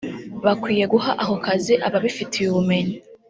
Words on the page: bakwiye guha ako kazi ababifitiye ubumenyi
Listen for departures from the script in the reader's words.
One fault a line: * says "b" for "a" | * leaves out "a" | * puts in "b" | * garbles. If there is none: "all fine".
all fine